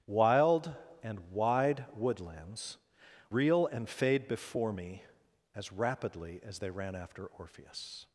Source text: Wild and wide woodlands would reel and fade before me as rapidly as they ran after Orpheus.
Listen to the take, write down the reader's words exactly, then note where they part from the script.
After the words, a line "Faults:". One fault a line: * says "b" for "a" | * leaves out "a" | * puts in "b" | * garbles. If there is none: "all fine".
Wild and wide woodlands reel and fade before me as rapidly as they ran after Orpheus.
Faults:
* leaves out "would"